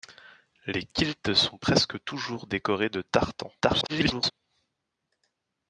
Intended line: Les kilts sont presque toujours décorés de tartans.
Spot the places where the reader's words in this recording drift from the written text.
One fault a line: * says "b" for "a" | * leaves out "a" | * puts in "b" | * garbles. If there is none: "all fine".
* garbles